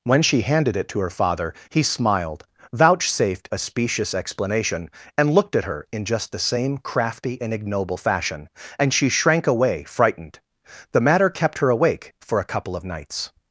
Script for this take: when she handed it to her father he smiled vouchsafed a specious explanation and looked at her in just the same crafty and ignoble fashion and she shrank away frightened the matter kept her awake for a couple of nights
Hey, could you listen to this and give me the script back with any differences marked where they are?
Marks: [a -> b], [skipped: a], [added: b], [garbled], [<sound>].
when she handed it to her father he smiled vouchsafed a specious explanation and looked at her in just the same crafty and ignoble fashion and she shrank away frightened the matter kept her awake for a couple of nights